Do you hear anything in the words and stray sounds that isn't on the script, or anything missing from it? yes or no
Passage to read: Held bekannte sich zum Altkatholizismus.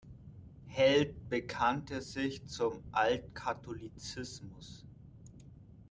no